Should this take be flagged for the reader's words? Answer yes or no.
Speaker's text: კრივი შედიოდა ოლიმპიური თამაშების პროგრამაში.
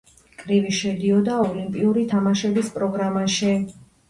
no